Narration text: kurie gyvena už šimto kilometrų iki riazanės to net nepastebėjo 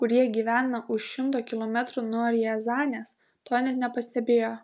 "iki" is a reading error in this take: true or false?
true